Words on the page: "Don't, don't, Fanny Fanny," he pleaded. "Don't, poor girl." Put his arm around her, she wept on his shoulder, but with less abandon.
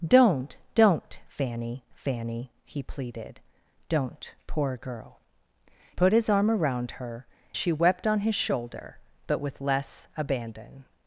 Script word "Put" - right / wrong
right